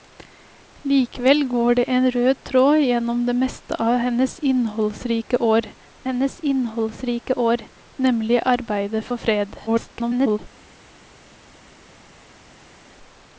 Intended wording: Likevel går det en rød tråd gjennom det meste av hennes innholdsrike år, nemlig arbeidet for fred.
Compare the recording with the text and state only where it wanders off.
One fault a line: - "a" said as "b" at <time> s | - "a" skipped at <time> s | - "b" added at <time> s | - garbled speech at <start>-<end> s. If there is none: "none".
- "hennes innholdsrike år" added at 6.1 s
- garbled speech at 9.7-10.4 s